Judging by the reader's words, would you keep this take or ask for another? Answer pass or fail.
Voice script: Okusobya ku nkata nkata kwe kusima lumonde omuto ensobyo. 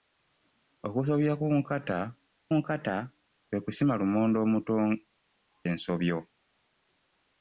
pass